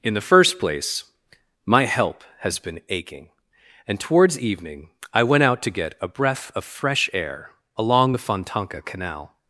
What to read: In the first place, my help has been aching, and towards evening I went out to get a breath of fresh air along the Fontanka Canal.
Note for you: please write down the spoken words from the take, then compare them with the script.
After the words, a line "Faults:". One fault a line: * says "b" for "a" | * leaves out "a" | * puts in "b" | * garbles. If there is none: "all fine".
In the first place, my help has been aching, and towards evening I went out to get a breath of fresh air along the Fontanka Canal.
Faults:
all fine